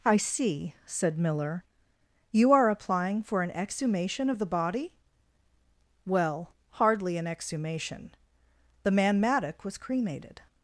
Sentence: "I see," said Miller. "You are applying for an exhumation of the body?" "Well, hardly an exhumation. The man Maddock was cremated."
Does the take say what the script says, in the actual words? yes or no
yes